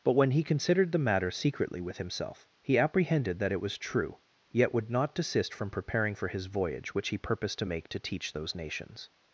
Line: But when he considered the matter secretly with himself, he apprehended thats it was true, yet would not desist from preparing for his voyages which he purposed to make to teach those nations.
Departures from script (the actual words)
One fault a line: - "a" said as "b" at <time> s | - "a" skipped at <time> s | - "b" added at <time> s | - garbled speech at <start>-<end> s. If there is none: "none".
- "thats" said as "that" at 3.4 s
- "voyages" said as "voyage" at 6.5 s